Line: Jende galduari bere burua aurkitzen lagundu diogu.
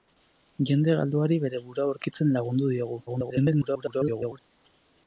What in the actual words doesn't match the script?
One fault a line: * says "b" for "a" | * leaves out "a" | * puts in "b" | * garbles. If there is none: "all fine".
* garbles